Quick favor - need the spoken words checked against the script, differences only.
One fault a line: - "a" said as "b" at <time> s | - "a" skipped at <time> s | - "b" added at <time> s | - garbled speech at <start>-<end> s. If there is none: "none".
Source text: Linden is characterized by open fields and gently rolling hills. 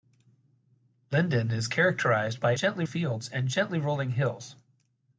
- "open" said as "gently" at 2.5 s